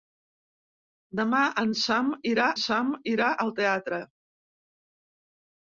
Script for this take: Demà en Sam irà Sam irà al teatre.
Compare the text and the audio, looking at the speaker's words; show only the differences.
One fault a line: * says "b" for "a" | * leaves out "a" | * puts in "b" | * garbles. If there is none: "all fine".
all fine